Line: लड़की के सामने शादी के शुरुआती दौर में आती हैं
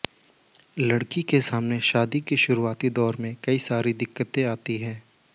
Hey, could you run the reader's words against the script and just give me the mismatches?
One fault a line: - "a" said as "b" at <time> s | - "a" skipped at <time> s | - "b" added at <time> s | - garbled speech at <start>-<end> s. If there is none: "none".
- "कई सारी दिक्कतें" added at 3.4 s